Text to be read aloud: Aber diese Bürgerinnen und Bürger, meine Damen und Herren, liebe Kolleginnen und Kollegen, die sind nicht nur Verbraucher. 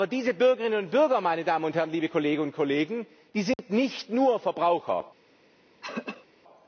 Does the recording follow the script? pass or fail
pass